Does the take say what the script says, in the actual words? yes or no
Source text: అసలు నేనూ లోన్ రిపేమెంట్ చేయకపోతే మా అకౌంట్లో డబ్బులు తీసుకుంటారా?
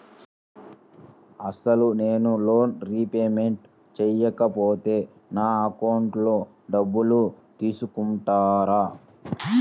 no